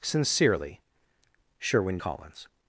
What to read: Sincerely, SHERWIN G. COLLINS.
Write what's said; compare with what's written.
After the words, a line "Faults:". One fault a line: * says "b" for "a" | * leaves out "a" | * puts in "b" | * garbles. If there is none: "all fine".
Sincerely, SHERWIN. COLLINS.
Faults:
* leaves out "G"